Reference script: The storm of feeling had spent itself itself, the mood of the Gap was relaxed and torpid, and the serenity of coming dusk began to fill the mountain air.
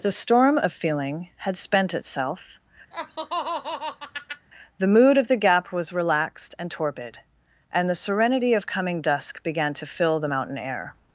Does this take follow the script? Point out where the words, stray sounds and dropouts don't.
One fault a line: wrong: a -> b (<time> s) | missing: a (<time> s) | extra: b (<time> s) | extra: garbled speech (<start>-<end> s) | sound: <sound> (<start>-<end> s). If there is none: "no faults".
missing: itself (2.6 s)
sound: laugh (2.9-4.5 s)